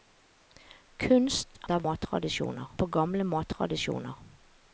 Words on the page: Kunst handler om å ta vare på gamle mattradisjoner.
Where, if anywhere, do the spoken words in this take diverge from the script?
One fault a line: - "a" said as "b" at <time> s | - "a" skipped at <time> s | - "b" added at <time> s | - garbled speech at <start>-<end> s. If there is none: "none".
- "handler om" skipped at 1.6 s
- "vare" said as "mattradisjoner" at 1.9 s